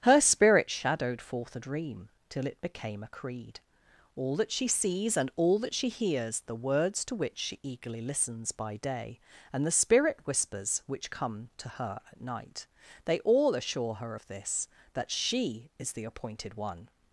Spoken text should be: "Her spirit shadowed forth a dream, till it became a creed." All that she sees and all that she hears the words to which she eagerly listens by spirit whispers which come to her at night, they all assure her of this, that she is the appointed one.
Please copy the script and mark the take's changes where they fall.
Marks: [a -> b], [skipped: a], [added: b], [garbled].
"Her spirit shadowed forth a dream, till it became a creed." All that she sees and all that she hears the words to which she eagerly listens by [added: day and the] spirit whispers which come to her at night, they all assure her of this, that she is the appointed one.